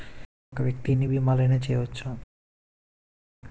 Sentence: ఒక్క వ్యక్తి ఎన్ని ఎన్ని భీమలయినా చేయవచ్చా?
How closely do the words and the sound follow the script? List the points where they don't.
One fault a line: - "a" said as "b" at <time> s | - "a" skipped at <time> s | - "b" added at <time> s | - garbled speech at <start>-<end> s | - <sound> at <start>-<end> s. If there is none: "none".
- "ఎన్ని" skipped at 1.1 s